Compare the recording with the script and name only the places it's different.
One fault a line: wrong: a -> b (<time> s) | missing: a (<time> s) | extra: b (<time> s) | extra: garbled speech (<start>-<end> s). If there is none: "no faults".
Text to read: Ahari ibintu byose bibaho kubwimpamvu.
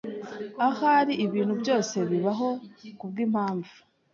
no faults